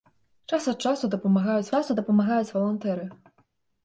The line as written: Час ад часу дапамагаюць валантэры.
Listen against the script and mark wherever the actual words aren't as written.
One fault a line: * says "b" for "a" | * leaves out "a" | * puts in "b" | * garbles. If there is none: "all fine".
* puts in "часу дапамагаюць"